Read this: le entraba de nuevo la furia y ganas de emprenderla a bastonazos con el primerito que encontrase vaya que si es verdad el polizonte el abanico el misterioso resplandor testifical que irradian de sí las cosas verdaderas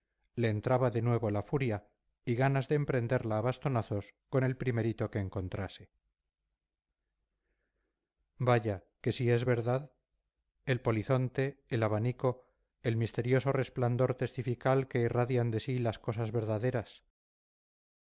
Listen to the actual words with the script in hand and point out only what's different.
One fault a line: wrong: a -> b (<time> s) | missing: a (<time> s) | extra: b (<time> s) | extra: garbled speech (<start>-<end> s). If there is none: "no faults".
no faults